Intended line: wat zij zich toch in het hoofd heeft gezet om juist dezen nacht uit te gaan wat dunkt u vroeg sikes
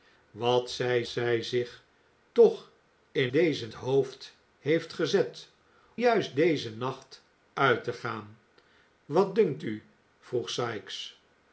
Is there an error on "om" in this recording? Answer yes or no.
yes